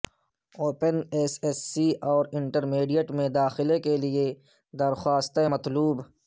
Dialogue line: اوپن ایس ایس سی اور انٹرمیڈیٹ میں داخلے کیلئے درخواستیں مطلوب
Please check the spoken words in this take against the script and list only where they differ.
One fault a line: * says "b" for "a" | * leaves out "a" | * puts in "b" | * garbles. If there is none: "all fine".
all fine